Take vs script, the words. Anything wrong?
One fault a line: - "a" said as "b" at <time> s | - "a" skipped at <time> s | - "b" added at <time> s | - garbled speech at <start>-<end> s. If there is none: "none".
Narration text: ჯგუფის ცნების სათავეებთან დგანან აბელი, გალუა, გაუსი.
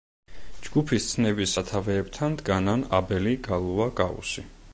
none